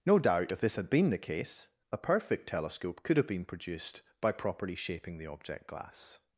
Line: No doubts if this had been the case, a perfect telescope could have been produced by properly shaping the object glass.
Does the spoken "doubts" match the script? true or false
false